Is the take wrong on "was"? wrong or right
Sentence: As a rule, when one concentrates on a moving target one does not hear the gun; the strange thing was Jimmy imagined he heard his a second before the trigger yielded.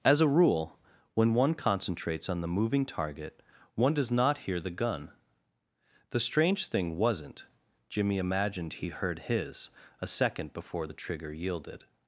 wrong